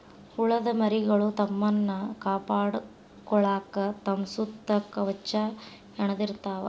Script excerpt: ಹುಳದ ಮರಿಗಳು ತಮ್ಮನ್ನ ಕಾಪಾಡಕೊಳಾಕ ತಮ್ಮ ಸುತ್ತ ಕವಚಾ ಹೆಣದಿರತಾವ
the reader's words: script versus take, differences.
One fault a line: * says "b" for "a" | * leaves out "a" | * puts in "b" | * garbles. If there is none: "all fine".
all fine